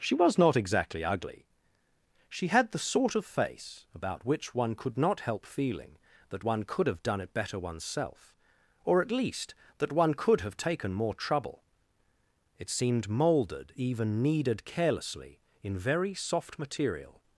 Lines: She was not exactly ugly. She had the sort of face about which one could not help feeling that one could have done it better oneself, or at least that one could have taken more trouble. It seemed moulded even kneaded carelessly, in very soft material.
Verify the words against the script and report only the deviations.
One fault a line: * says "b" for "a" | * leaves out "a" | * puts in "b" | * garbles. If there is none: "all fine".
all fine